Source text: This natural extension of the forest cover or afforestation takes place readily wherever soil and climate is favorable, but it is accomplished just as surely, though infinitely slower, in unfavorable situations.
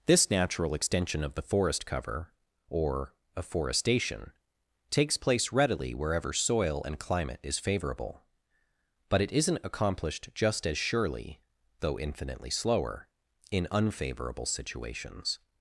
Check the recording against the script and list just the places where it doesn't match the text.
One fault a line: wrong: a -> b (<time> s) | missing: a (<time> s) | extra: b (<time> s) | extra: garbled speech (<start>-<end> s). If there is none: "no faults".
wrong: is -> isn't (9.3 s)